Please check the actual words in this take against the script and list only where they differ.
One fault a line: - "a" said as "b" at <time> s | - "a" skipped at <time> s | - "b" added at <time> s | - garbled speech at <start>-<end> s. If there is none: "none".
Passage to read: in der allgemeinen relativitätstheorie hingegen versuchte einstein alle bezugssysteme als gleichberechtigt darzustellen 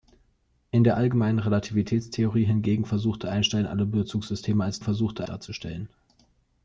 - "gleichberechtigt" said as "versuchte" at 4.8 s